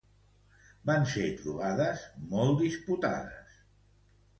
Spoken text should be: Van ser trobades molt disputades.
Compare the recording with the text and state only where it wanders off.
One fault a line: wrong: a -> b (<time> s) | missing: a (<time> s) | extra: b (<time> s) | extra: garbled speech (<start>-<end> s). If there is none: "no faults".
no faults